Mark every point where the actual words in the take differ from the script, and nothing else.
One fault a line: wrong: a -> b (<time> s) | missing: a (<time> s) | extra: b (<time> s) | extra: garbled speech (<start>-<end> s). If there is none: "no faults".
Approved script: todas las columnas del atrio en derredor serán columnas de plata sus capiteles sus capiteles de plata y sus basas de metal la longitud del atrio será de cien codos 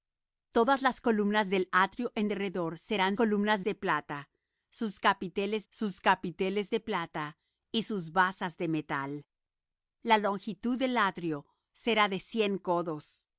no faults